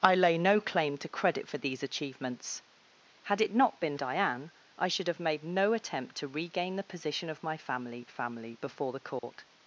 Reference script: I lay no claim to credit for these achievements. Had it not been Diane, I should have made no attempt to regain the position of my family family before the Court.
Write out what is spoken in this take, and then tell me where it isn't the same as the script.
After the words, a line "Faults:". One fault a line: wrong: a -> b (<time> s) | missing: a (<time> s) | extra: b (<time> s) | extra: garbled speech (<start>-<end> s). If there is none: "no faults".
I lay no claim to credit for these achievements. Had it not been Diane, I should have made no attempt to regain the position of my family family before the Court.
Faults:
no faults